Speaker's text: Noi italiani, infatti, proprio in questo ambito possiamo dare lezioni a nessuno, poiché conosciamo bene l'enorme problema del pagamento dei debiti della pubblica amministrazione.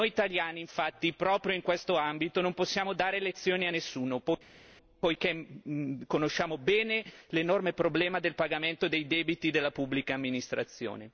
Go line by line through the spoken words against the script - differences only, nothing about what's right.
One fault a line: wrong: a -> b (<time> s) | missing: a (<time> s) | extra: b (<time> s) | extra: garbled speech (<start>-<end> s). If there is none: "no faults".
extra: non (2.4 s)